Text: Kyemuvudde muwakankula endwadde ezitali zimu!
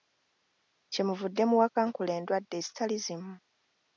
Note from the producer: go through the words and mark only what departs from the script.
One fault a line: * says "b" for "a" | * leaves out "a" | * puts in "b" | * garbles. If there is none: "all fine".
all fine